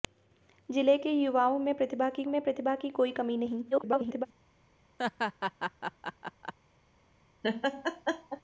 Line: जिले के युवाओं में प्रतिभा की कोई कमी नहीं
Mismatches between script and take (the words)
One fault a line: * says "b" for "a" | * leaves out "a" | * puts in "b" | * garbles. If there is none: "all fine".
* puts in "में प्रतिभा की"
* garbles